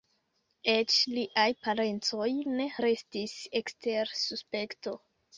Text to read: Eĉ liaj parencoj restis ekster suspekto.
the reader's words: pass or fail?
fail